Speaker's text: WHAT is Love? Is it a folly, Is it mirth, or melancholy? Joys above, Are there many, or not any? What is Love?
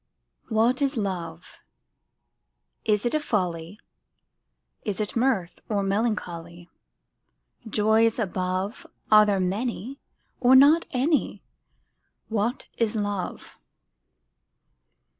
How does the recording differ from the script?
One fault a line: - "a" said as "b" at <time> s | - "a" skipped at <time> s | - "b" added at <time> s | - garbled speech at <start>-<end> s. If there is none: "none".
none